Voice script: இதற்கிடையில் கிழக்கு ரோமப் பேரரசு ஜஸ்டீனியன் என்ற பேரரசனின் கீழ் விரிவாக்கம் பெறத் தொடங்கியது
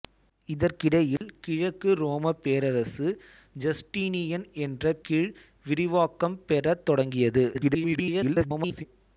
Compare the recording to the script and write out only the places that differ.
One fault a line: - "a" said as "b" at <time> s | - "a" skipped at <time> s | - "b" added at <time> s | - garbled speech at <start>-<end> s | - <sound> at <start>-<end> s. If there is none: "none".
- dropout at 1.2-1.2 s
- "பேரரசனின்" skipped at 5.0 s
- garbled speech at 7.5-8.9 s